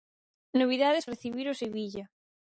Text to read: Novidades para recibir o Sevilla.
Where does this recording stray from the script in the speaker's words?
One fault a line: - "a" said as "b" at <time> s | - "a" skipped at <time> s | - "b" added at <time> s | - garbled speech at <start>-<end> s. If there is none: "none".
- "para" skipped at 1.1 s